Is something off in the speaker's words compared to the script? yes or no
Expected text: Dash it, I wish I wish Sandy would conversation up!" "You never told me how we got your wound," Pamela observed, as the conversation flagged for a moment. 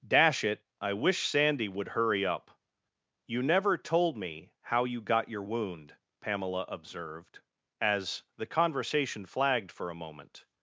yes